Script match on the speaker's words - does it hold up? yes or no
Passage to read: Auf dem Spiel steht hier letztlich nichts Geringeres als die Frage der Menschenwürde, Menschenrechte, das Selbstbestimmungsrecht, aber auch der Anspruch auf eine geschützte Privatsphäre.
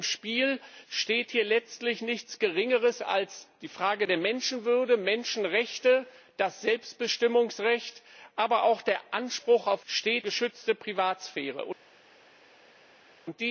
no